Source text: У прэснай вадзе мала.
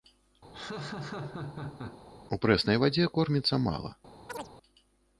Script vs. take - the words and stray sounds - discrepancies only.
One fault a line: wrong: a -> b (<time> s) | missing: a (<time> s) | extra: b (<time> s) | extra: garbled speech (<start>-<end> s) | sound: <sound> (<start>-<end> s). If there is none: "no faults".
sound: laugh (0.5-2.0 s)
extra: корміцца (3.2 s)
sound: chirp (4.3-4.5 s)